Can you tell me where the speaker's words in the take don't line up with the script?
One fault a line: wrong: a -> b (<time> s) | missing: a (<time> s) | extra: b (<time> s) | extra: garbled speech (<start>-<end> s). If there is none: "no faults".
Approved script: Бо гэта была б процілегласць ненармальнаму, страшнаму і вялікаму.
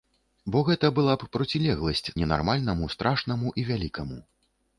no faults